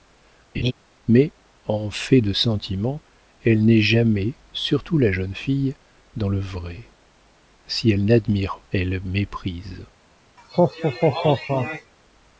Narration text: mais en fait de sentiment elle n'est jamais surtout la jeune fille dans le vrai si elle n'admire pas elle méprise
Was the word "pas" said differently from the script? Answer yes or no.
yes